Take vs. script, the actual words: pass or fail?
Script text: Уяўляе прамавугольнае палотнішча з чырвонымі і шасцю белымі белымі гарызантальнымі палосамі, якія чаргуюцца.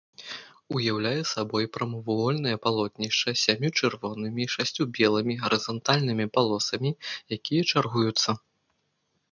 fail